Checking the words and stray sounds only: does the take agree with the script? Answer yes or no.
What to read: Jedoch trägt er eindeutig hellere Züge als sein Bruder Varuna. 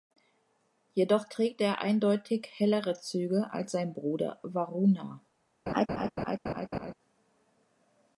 no